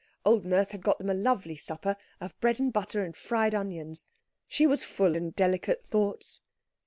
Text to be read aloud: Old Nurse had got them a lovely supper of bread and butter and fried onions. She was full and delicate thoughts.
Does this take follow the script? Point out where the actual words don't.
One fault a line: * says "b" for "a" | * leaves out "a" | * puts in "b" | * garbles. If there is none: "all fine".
all fine